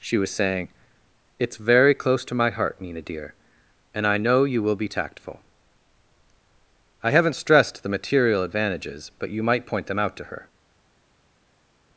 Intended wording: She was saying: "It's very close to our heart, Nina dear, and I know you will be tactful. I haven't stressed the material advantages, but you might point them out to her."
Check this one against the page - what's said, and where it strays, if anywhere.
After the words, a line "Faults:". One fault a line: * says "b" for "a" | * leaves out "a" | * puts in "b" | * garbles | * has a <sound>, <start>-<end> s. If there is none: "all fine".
She was saying: "It's very close to my heart, Nina dear, and I know you will be tactful. I haven't stressed the material advantages, but you might point them out to her."
Faults:
* says "my" for "our"